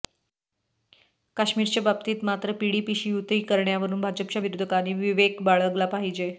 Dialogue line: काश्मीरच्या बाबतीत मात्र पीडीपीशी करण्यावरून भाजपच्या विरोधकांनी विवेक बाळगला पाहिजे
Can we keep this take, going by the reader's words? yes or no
no